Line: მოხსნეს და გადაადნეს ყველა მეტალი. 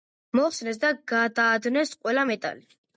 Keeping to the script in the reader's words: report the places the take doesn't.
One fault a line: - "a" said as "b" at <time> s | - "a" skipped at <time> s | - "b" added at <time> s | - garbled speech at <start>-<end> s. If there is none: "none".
none